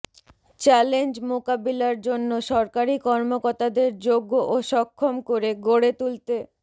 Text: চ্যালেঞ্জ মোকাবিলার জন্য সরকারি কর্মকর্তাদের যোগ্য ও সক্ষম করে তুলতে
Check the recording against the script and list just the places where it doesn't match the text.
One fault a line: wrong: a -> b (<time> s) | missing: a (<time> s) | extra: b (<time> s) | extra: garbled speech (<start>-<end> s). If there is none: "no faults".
extra: গড়ে (5.7 s)